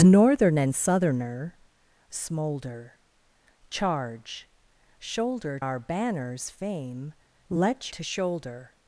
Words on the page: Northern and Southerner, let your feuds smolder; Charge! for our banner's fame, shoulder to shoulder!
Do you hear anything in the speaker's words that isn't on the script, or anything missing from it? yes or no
yes